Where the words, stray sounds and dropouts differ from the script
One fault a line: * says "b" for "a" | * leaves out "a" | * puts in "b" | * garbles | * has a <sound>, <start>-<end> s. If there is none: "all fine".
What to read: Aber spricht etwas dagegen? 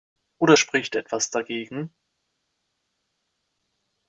* says "Oder" for "Aber"